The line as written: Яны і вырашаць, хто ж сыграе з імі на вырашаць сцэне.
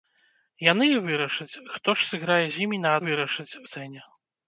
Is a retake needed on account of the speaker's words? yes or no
no